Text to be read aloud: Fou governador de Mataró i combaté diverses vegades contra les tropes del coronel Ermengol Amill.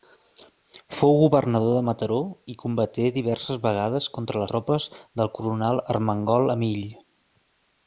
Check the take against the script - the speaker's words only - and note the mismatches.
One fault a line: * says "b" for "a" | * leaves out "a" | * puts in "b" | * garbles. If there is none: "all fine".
* leaves out "les"